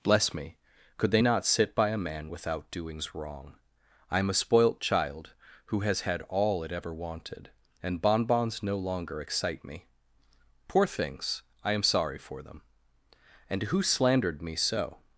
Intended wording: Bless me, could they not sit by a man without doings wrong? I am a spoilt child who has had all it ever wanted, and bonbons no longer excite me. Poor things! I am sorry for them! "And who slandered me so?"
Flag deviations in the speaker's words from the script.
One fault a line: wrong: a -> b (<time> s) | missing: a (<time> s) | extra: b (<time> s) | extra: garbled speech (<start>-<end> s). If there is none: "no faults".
no faults